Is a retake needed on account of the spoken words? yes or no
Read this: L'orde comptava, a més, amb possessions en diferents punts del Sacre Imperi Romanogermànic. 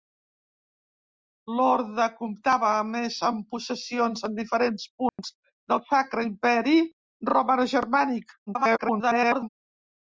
yes